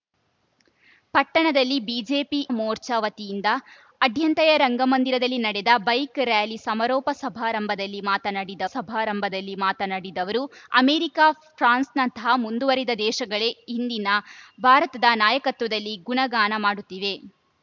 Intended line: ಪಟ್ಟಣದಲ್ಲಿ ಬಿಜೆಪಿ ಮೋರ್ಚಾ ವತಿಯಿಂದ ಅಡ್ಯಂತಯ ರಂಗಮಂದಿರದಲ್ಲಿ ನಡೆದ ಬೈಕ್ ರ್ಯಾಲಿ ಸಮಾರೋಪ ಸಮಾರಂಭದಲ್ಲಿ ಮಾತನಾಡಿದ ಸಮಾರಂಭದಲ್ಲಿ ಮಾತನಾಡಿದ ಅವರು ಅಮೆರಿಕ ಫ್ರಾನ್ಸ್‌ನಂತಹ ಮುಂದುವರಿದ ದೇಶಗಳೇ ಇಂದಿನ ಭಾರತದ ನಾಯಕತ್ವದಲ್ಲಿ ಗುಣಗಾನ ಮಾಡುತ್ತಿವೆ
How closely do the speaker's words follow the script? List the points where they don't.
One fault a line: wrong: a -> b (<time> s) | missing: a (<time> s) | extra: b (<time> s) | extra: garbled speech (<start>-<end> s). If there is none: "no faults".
no faults